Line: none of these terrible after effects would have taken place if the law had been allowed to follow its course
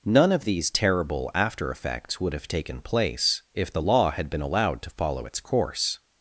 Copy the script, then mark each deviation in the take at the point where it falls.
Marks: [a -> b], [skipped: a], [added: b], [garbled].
none of these terrible after effects would have taken place if the law had been allowed to follow its course